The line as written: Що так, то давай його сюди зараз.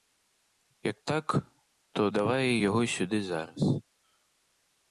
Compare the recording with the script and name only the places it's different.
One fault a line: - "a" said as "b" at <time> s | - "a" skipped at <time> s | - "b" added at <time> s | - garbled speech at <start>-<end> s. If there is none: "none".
- "Що" said as "Як" at 0.8 s